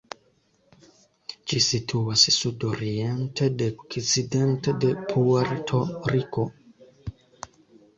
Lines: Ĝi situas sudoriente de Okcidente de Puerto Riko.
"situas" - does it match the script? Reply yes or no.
yes